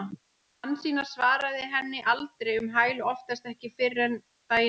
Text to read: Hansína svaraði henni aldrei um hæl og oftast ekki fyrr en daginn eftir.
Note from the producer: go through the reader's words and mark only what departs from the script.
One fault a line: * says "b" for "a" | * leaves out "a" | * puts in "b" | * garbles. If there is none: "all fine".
all fine